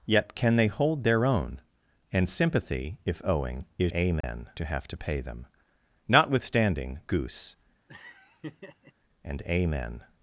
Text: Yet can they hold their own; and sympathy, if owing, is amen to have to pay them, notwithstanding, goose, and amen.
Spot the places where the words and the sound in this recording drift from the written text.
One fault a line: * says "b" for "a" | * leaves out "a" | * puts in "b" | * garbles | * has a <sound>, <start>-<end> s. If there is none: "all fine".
* has a dropout, 4.2-4.2 s
* has a laugh, 7.9-8.9 s